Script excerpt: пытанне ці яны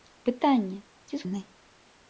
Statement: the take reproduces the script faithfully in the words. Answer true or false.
true